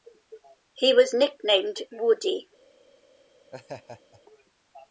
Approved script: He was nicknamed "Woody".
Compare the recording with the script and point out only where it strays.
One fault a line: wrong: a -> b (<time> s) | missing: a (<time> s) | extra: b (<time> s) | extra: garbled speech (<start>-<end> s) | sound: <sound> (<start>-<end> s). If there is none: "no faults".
sound: laugh (3.5-4.2 s)